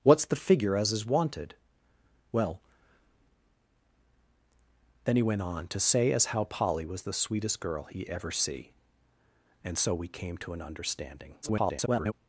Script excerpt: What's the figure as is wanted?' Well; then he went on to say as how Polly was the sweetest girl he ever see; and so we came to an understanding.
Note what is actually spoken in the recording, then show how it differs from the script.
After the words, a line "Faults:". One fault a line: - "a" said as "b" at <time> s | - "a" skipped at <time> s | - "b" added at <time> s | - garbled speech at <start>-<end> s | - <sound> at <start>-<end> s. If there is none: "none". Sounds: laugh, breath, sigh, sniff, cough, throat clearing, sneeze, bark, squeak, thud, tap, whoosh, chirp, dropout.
What's the figure as is wanted?' Well; then he went on to say as how Polly was the sweetest girl he ever see; and so we came to an understanding. [garbled]
Faults:
- garbled speech at 11.4-12.1 s